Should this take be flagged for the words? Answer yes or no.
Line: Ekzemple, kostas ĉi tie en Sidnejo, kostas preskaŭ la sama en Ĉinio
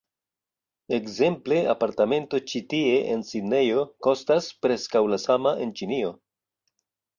yes